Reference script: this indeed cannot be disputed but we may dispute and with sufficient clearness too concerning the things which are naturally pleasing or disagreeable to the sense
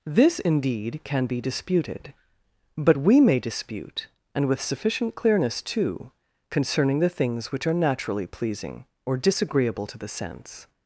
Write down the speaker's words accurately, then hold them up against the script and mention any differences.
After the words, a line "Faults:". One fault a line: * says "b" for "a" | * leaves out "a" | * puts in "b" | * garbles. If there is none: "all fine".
this indeed can be disputed but we may dispute and with sufficient clearness too concerning the things which are naturally pleasing or disagreeable to the sense
Faults:
* says "can" for "cannot"